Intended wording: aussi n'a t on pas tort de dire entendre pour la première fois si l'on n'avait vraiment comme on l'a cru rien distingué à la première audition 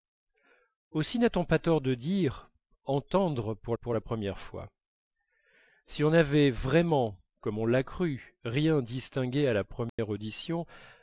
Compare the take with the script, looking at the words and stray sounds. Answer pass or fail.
fail